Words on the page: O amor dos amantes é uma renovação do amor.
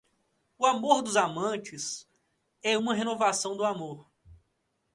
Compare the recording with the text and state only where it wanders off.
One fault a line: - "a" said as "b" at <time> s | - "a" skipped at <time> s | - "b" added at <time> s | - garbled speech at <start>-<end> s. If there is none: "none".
none